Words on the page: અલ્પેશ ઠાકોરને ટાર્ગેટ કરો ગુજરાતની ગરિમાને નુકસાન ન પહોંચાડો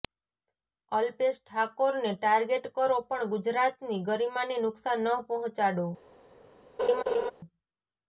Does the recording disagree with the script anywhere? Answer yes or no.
yes